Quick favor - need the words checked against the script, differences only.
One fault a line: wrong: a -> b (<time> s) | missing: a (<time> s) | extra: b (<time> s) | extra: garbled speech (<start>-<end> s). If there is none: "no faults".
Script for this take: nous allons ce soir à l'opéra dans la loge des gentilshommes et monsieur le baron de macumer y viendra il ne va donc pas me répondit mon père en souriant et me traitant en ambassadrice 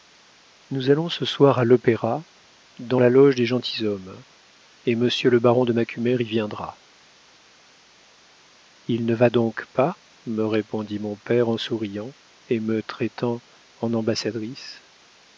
no faults